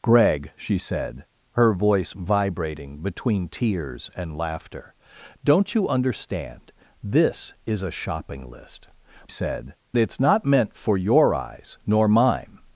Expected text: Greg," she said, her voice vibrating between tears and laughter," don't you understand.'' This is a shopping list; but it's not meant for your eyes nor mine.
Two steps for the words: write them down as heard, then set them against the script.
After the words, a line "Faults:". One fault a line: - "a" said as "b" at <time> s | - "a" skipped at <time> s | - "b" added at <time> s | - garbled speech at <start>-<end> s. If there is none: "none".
Greg," she said, her voice vibrating between tears and laughter," don't you understand.'' This is a shopping list; said it's not meant for your eyes nor mine.
Faults:
- "but" said as "said" at 9.3 s